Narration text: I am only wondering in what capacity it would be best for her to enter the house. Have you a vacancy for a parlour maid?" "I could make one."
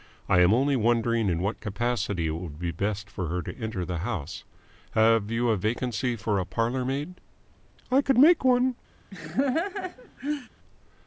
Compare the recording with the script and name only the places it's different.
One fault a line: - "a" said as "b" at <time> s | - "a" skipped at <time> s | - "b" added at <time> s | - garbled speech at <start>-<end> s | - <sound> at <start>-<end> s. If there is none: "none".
- laugh at 9.1-10.5 s